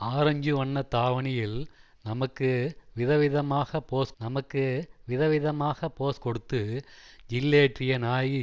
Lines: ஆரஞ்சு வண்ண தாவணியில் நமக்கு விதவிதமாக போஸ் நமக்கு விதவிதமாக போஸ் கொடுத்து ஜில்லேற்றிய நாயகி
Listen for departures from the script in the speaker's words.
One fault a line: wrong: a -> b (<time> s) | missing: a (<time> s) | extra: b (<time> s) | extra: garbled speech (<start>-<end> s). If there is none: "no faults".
no faults